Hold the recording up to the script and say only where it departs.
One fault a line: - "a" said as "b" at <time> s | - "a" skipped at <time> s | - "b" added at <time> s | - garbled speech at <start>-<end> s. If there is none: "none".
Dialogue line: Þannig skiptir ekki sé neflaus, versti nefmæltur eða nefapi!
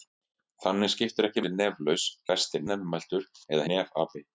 none